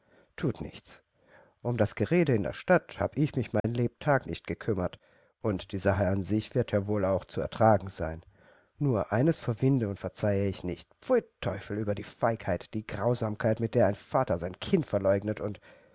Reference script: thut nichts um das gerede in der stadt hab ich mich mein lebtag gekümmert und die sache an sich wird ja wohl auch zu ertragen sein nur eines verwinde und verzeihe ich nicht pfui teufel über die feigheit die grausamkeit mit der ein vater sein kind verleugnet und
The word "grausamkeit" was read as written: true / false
true